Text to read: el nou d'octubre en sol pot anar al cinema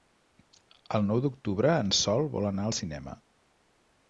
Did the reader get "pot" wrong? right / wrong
wrong